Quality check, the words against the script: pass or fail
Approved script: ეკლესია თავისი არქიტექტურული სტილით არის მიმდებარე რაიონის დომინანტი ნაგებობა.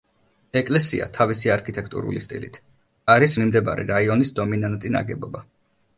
pass